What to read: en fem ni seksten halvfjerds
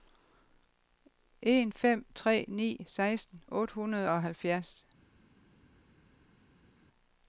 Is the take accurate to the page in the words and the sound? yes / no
no